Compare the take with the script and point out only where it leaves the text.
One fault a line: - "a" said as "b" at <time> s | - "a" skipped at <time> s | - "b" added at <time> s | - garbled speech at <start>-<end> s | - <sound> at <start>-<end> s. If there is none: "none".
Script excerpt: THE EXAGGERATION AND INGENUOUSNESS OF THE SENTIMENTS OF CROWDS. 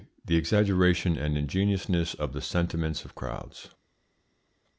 none